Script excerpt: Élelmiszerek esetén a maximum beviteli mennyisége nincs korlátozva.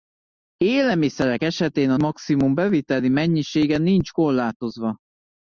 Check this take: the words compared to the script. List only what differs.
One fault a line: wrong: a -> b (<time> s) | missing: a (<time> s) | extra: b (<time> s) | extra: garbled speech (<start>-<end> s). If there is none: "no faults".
no faults